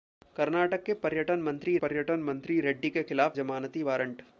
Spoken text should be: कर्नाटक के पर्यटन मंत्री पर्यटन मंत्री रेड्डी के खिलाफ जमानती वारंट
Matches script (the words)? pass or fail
pass